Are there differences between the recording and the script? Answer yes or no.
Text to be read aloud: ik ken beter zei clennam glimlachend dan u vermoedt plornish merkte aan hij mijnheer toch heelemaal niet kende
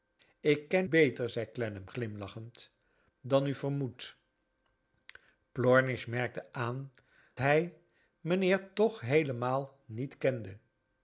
no